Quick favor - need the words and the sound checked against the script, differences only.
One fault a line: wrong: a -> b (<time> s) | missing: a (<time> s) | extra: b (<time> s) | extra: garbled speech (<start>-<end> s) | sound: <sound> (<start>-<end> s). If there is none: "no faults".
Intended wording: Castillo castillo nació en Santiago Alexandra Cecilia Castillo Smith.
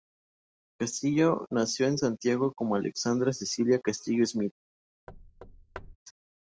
missing: castillo (1.4 s)
extra: como (2.5 s)
sound: thud (5.1-6.0 s)